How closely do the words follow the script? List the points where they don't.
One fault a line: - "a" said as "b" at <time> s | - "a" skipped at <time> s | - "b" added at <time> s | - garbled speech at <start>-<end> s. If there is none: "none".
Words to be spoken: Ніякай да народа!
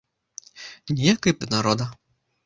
none